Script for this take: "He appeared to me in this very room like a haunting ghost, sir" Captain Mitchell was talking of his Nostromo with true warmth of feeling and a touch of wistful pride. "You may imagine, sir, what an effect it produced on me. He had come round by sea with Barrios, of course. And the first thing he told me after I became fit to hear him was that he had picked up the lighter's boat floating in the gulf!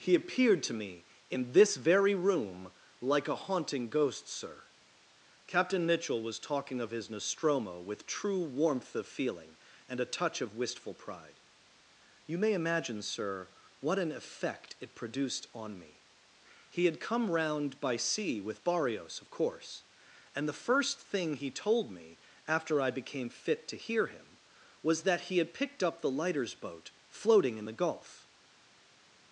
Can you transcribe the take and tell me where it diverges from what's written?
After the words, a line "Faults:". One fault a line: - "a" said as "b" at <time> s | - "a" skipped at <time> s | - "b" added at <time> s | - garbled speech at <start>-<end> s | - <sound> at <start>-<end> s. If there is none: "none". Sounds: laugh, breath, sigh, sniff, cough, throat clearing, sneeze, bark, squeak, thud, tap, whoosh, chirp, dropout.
"He appeared to me in this very room like a haunting ghost, sir" Captain Mitchell was talking of his Nostromo with true warmth of feeling and a touch of wistful pride. "You may imagine, sir, what an effect it produced on me. He had come round by sea with Barrios, of course. And the first thing he told me after I became fit to hear him was that he had picked up the lighter's boat floating in the gulf!
Faults:
none